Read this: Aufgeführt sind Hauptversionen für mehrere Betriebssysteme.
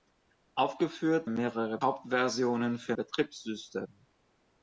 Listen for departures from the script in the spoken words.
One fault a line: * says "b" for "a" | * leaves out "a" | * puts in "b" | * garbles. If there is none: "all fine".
* says "mehrere" for "sind"
* leaves out "mehrere"